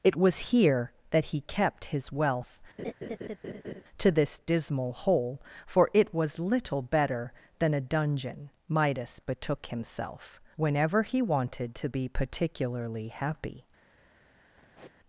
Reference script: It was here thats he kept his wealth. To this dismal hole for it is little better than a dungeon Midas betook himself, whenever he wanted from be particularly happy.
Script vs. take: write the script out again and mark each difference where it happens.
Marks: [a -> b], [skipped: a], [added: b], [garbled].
It was here [thats -> that] he kept his wealth. To this dismal hole for it [is -> was] little better than a dungeon Midas betook himself, whenever he wanted [from -> to] be particularly happy.